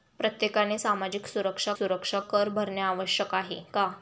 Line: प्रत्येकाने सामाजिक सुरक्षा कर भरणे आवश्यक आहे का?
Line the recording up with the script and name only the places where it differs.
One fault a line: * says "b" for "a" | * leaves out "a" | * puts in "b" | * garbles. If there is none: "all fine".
* puts in "सुरक्षा"